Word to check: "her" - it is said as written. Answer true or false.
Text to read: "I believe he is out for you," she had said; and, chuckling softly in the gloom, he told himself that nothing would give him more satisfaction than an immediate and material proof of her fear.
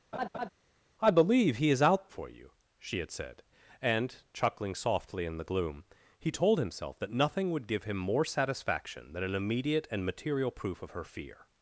true